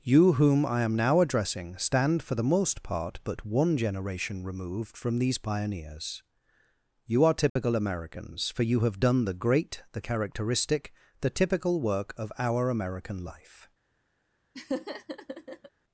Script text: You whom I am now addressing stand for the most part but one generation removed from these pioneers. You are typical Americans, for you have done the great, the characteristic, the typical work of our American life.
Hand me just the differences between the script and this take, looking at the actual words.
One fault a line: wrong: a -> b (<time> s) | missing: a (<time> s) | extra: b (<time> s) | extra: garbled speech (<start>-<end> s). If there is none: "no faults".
no faults